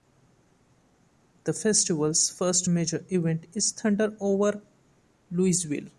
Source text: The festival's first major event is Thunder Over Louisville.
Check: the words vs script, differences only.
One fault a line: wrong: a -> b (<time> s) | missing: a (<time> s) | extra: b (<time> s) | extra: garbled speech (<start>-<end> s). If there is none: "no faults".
no faults